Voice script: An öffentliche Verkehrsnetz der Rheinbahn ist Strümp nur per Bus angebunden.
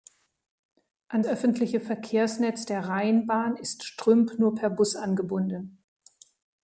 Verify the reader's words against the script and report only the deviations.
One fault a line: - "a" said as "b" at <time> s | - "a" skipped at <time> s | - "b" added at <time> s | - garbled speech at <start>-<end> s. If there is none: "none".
none